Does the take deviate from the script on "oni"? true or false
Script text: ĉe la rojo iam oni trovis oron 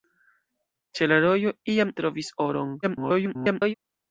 true